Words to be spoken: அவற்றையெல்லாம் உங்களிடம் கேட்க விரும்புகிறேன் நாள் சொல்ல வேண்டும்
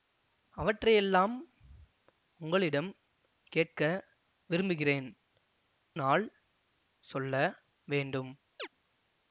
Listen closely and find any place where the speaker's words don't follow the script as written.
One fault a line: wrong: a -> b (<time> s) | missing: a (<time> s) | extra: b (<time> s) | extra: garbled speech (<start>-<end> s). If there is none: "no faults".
no faults